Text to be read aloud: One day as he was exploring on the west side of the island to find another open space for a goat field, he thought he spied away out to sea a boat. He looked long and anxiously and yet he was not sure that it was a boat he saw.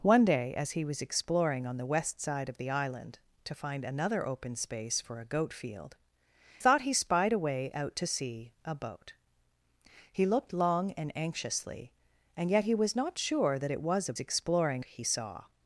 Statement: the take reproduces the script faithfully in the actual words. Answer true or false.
false